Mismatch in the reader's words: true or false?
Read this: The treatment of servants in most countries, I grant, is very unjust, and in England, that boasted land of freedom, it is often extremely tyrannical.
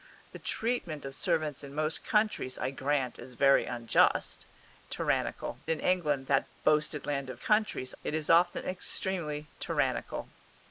true